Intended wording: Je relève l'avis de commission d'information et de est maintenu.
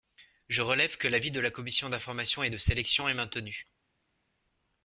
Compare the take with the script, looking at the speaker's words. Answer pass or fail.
fail